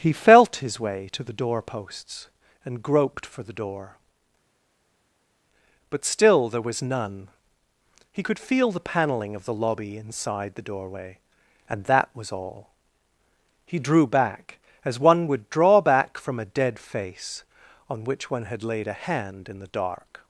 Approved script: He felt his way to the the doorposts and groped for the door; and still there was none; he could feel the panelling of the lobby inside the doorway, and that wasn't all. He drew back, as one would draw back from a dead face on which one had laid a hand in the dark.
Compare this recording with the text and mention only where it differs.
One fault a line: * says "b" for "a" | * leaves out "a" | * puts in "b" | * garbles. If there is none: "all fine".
* leaves out "the"
* says "but" for "and"
* says "was" for "wasn't"